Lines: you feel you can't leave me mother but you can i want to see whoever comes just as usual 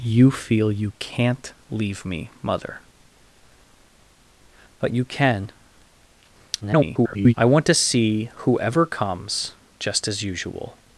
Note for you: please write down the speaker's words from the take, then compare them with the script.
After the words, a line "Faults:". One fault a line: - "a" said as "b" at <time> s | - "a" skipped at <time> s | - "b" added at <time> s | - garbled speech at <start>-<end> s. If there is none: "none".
you feel you can't leave me mother but you can [garbled] i want to see whoever comes just as usual
Faults:
- garbled speech at 6.6-7.3 s